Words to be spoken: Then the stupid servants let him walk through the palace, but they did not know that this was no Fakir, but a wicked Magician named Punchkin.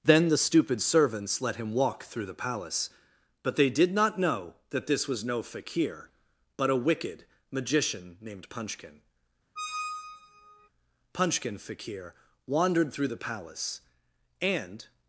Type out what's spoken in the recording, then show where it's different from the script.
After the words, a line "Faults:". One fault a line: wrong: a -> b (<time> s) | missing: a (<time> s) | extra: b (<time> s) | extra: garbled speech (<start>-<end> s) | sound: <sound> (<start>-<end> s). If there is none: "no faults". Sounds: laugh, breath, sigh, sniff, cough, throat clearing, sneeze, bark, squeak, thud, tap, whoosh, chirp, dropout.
Then the stupid servants let him walk through the palace, but they did not know that this was no Fakir, but a wicked Magician named Punchkin. Punchkin Fakir wandered through the palace, and
Faults:
sound: squeak (9.6-10.7 s)
extra: Punchkin Fakir wandered through the palace and (11.1 s)